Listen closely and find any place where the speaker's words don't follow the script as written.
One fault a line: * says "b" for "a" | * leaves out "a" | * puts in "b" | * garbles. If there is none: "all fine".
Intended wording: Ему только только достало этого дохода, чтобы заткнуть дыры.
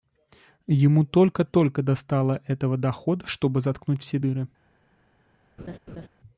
* puts in "все"